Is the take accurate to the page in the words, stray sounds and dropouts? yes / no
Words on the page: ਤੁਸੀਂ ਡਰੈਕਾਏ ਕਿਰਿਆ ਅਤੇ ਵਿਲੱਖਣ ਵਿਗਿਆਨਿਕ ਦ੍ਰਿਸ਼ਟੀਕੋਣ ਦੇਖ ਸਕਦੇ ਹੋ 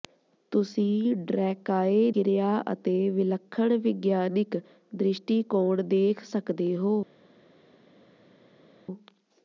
yes